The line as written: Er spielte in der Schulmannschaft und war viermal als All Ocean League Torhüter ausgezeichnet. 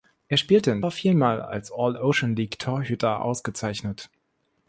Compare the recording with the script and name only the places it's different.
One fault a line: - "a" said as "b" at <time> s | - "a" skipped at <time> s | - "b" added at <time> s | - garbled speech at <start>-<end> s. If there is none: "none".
- "der Schulmannschaft und" skipped at 0.8 s